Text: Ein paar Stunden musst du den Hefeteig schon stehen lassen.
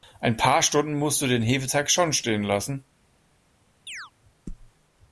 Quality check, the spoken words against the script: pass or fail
pass